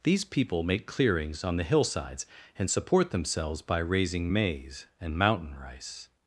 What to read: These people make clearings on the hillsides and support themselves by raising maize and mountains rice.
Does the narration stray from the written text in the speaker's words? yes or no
yes